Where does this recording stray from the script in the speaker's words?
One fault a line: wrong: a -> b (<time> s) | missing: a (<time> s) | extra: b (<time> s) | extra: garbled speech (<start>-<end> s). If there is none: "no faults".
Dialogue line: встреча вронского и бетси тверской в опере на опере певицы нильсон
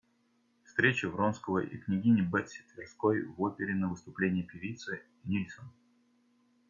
extra: княгини (1.8 s)
wrong: опере -> выступлении (3.9 s)